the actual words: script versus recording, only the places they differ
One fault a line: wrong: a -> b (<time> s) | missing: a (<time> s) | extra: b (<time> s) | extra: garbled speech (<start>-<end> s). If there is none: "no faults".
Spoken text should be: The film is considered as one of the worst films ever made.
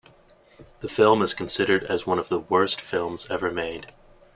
no faults